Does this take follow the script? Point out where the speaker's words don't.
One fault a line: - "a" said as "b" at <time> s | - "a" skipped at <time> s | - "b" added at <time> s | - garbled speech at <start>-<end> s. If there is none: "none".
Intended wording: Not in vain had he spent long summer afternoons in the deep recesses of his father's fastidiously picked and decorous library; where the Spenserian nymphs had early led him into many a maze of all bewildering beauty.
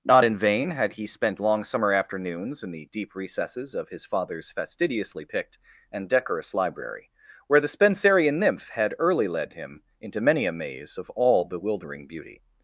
- "nymphs" said as "nymph" at 8.4 s